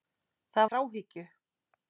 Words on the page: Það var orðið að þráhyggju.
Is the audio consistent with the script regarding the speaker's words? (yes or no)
no